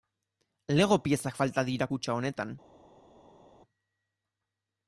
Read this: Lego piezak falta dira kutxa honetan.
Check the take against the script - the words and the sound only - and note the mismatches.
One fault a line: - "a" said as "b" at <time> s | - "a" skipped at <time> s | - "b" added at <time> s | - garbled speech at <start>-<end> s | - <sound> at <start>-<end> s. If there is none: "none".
none